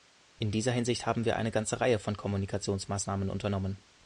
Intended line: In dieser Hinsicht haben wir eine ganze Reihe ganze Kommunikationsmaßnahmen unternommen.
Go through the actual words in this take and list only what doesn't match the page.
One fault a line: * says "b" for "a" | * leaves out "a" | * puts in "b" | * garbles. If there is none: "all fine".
* says "von" for "ganze"